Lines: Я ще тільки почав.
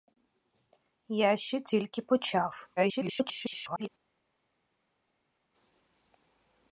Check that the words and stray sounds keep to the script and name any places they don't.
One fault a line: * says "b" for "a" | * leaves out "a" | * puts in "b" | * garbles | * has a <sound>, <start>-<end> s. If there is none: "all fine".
* garbles